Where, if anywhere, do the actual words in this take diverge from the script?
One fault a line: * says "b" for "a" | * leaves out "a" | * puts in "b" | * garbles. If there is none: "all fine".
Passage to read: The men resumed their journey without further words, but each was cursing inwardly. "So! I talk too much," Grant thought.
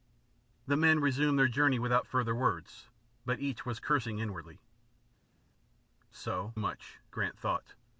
* leaves out "I talk too"